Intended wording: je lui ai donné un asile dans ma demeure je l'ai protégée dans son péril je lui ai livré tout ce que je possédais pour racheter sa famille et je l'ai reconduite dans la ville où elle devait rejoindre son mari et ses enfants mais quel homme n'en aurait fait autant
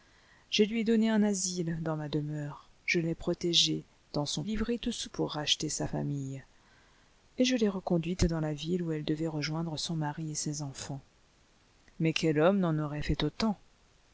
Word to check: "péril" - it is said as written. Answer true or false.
false